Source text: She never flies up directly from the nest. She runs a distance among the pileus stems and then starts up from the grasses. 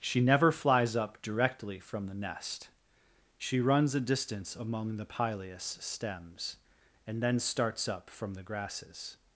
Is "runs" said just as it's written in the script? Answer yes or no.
yes